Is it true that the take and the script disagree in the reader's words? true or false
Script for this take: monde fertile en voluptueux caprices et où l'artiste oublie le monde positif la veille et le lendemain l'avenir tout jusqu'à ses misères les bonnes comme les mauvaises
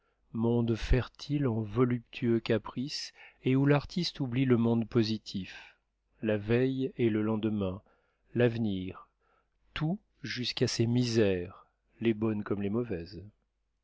false